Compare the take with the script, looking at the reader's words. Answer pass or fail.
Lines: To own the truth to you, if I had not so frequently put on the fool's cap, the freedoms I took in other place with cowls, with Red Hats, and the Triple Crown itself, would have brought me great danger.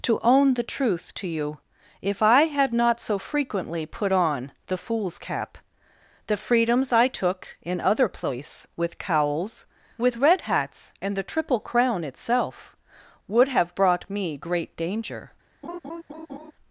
pass